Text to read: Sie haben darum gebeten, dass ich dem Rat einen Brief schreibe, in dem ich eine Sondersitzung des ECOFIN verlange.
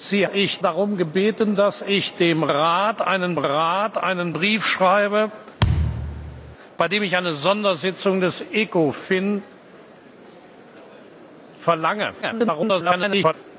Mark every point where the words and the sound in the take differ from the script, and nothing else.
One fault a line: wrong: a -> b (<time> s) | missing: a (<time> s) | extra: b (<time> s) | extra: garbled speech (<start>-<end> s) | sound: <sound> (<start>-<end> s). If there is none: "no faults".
wrong: haben -> ich (0.3 s)
extra: Rat einen (3.4 s)
sound: thud (5.6-6.6 s)
extra: garbled speech (12.2-13.3 s)